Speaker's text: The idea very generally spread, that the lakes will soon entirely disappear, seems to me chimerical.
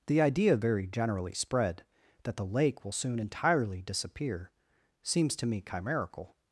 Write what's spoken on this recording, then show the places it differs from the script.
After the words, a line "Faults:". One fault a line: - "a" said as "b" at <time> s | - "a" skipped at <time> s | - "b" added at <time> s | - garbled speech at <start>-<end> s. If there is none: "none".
The idea very generally spread, that the lake will soon entirely disappear, seems to me chimerical.
Faults:
- "lakes" said as "lake" at 2.5 s